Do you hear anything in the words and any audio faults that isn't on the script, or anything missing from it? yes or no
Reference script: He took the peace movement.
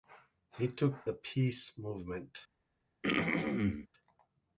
yes